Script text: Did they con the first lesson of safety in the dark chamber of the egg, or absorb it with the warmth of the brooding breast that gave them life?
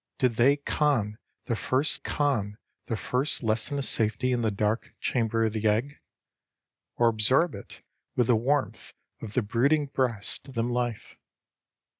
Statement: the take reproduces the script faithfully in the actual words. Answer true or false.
false